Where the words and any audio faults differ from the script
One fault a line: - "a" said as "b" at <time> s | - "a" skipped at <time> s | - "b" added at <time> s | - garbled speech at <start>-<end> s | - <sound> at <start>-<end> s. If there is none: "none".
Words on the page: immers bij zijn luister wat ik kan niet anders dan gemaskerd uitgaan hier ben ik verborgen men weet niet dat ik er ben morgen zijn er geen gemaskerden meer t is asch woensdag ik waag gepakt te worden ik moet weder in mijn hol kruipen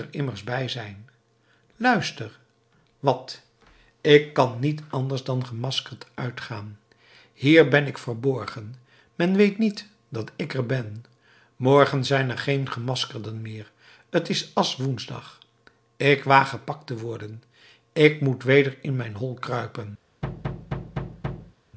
- thud at 20.2-21.5 s